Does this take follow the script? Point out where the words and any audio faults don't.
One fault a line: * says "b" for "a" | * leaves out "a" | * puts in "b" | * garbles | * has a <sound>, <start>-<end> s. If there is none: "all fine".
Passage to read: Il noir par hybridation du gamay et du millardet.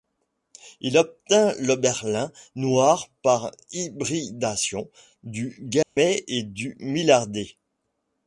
* puts in "obtint l'oberlin"
* has a dropout, 5.8-6.0 s